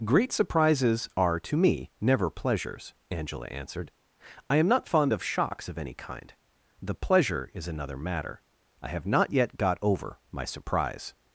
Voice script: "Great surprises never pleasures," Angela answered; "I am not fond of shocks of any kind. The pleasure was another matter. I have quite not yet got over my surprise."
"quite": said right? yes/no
no